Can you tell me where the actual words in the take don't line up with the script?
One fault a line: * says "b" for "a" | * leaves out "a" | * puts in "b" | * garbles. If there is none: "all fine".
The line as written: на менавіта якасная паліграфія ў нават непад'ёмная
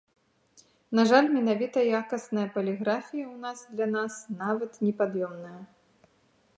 * puts in "жаль"
* puts in "нас для нас"